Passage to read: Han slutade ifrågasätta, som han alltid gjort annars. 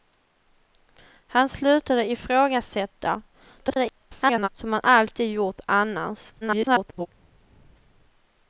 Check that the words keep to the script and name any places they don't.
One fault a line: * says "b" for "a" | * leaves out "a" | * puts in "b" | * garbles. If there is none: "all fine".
* garbles
* garbles